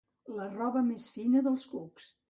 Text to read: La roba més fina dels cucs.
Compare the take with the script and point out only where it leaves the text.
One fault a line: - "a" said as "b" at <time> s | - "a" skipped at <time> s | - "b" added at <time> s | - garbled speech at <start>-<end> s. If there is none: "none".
none